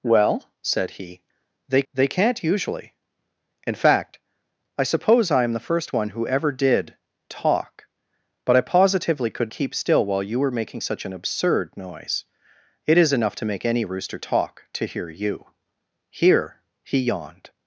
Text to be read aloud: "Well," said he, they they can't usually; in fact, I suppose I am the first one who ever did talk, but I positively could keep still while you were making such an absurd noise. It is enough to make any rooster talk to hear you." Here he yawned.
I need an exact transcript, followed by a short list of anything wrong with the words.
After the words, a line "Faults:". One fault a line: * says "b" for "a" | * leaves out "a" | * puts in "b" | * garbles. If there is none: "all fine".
"Well," said he, they they can't usually; in fact, I suppose I am the first one who ever did talk, but I positively could keep still while you were making such an absurd noise. It is enough to make any rooster talk to hear you." Here he yawned.
Faults:
all fine